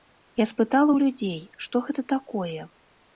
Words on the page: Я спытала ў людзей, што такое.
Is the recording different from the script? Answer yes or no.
yes